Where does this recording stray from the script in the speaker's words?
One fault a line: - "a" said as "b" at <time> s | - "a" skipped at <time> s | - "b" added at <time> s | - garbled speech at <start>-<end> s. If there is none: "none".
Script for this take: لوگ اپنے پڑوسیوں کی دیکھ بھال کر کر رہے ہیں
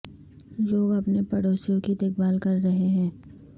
- "کر" skipped at 2.6 s